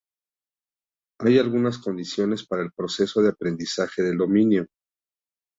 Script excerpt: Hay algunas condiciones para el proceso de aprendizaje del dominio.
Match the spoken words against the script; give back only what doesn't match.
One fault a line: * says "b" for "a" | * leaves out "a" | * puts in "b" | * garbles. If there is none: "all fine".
all fine